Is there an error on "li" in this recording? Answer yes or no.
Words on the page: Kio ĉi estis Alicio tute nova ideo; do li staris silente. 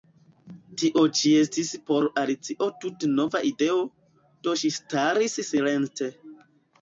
yes